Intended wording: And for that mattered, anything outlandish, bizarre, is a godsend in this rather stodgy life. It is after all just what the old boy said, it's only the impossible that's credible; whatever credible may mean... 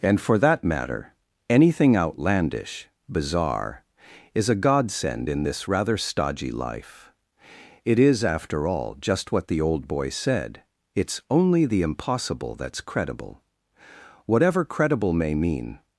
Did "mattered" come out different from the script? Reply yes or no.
yes